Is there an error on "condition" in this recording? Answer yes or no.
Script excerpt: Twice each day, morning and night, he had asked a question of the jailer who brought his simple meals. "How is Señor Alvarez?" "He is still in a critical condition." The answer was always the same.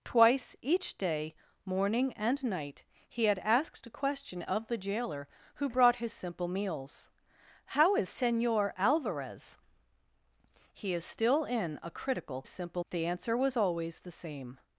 yes